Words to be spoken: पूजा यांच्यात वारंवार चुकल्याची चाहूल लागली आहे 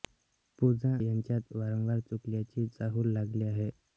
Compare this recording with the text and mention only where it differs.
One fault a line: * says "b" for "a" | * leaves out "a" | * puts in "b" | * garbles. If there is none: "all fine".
all fine